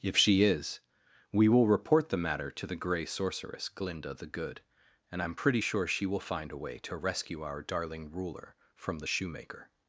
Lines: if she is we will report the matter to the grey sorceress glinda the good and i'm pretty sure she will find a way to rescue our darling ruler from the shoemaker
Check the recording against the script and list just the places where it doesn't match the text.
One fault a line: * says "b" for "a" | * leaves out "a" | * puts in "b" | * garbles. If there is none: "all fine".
all fine